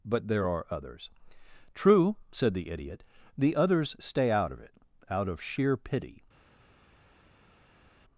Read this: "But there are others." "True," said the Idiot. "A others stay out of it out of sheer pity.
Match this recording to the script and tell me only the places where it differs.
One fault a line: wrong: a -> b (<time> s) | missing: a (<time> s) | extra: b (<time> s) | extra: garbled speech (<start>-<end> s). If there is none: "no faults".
wrong: A -> The (3.4 s)